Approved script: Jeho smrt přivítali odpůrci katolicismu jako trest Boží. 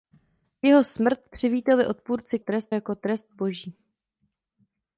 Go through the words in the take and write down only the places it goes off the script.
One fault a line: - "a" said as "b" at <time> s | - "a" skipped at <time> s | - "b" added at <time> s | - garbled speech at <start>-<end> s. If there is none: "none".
- "katolicismu" said as "trest" at 2.4 s